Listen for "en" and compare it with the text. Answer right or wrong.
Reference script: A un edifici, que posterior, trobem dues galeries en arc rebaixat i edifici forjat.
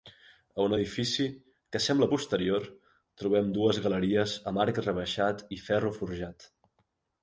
wrong